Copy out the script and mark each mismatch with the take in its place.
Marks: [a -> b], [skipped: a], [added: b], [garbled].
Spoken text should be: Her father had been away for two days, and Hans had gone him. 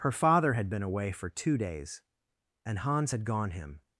Her father had been away for two days, and Hans had gone him.